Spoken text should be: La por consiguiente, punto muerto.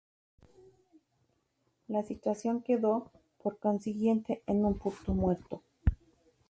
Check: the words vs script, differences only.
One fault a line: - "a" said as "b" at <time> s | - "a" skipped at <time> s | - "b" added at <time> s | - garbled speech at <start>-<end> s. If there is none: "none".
- "situación quedó" added at 2.0 s
- "en un" added at 4.5 s